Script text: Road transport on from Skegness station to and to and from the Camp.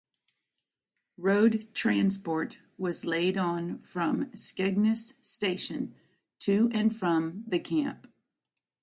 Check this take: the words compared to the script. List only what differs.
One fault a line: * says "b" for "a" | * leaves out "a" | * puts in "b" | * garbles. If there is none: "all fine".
* puts in "was laid"
* leaves out "to and"